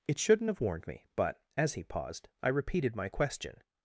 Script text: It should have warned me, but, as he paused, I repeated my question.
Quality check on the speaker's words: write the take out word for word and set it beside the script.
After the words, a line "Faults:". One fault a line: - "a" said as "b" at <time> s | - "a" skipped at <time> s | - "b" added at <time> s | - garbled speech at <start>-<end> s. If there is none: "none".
It shouldn't have warned me, but, as he paused, I repeated my question.
Faults:
- "should" said as "shouldn't" at 0.2 s